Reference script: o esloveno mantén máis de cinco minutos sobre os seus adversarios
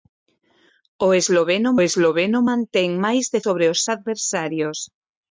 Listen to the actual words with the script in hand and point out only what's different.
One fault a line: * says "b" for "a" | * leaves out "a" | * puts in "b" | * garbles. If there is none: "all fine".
* puts in "esloveno"
* leaves out "cinco minutos"
* leaves out "seus"